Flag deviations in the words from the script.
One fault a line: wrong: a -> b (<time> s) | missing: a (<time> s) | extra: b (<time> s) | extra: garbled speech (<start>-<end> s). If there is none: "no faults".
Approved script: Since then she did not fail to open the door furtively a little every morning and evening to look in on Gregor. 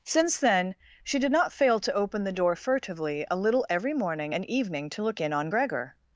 no faults